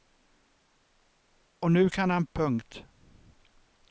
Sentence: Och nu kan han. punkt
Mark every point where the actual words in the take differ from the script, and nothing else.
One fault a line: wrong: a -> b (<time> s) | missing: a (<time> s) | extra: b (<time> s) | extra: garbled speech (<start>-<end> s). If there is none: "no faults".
no faults